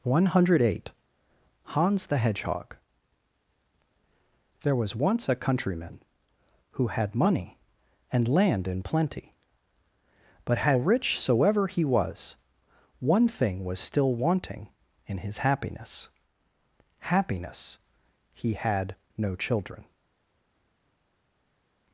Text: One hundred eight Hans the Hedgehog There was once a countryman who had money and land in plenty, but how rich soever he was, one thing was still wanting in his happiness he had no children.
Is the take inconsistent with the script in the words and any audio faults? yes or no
yes